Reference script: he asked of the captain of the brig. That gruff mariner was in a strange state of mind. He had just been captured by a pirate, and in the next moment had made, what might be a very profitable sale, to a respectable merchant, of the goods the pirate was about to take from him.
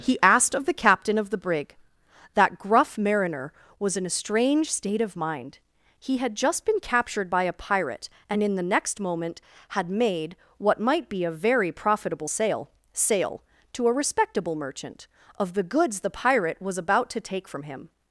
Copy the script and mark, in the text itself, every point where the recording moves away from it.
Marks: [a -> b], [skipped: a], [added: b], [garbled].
he asked of the captain of the brig. That gruff mariner was in a strange state of mind. He had just been captured by a pirate, and in the next moment had made, what might be a very profitable sale, [added: sale] to a respectable merchant, of the goods the pirate was about to take from him.